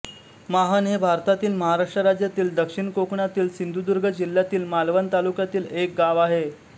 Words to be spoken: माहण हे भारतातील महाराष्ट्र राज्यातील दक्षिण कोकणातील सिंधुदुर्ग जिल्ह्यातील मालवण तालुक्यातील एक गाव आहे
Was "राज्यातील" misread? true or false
false